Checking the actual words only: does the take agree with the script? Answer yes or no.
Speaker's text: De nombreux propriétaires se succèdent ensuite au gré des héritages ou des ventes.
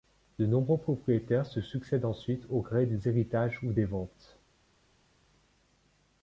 yes